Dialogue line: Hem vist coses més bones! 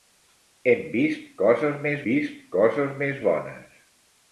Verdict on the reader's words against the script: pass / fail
fail